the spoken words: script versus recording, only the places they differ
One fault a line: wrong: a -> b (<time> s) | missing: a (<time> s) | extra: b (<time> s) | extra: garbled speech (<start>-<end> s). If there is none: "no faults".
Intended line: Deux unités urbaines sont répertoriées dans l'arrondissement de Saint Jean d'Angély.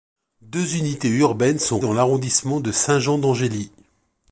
missing: répertoriées (1.8 s)